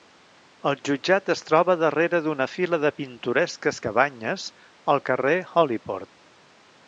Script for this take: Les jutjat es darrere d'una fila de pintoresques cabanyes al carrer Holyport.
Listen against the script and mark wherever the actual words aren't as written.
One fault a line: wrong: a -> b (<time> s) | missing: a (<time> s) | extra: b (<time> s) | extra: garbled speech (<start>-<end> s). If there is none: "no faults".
wrong: Les -> El (0.7 s)
extra: troba (1.5 s)